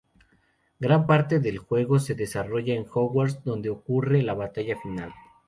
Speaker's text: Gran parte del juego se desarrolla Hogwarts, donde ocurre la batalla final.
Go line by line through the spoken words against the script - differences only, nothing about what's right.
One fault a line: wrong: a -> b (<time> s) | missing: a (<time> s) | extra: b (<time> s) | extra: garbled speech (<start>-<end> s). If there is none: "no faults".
extra: en (2.7 s)